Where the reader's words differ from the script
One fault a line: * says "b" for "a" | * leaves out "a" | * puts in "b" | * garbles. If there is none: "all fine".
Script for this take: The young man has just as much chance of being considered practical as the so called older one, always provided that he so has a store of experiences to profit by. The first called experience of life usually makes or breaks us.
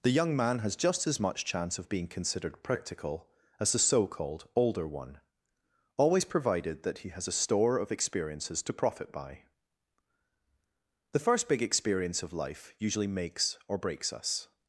* leaves out "so"
* says "big" for "called"